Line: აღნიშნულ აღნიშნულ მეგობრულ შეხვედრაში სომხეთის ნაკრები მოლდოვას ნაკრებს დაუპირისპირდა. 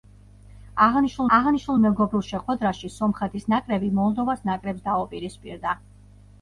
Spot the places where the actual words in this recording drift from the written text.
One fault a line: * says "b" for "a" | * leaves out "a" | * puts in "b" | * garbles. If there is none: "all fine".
all fine